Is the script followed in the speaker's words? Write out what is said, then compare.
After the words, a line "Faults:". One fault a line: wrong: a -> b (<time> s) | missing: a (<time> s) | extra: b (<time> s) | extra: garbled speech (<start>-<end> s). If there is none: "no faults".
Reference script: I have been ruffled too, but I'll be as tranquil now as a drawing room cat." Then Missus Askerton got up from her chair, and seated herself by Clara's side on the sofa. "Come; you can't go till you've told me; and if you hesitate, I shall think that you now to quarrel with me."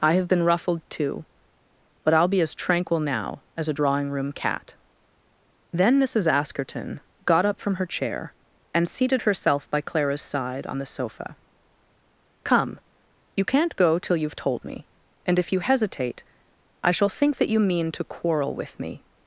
I have been ruffled too, but I'll be as tranquil now as a drawing room cat." Then Missus Askerton got up from her chair, and seated herself by Clara's side on the sofa. "Come; you can't go till you've told me; and if you hesitate, I shall think that you mean to quarrel with me."
Faults:
wrong: now -> mean (17.6 s)